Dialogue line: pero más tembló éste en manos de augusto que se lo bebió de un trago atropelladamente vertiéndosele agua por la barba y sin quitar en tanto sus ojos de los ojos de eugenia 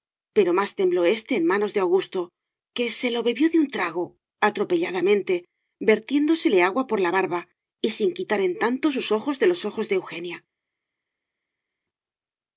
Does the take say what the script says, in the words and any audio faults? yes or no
yes